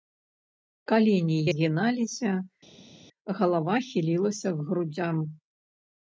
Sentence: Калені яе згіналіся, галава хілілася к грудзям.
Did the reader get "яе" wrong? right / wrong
wrong